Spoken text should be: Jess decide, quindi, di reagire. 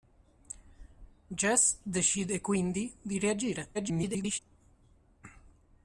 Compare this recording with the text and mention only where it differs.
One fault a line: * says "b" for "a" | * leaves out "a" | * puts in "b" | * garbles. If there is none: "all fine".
* garbles